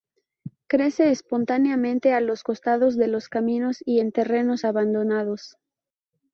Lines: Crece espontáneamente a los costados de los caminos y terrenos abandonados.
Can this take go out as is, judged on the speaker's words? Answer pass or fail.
fail